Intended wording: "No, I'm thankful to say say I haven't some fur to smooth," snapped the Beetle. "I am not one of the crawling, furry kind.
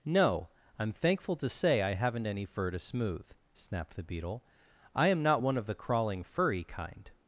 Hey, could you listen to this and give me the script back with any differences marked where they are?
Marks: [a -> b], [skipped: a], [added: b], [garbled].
"No, I'm thankful to say [skipped: say] I haven't [some -> any] fur to smooth," snapped the Beetle. "I am not one of the crawling, furry kind.